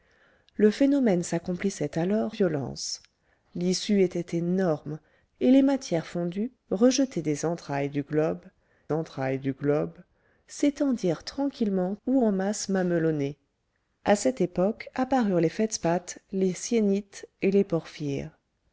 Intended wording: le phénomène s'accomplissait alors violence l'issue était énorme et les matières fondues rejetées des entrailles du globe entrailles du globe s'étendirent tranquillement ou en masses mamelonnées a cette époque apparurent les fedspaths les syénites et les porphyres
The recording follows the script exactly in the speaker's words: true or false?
true